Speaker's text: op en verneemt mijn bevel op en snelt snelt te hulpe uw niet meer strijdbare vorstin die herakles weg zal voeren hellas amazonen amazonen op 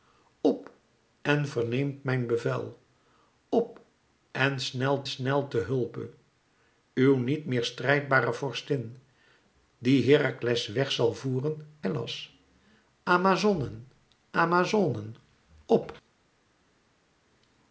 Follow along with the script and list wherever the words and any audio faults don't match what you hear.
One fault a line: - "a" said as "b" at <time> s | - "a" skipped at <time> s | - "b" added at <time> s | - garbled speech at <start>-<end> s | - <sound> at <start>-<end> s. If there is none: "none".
none